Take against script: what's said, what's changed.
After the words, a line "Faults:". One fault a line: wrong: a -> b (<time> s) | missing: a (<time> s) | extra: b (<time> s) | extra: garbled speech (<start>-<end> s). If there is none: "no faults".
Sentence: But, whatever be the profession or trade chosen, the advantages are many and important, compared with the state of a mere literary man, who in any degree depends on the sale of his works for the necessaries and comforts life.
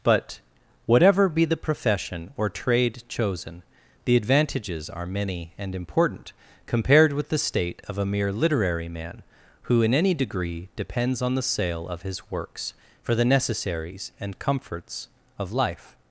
But, whatever be the profession or trade chosen, the advantages are many and important, compared with the state of a mere literary man, who in any degree depends on the sale of his works for the necessaries and comforts of life.
Faults:
extra: of (15.4 s)